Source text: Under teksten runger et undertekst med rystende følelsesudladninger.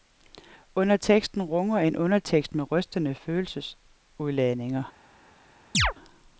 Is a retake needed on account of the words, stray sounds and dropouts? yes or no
yes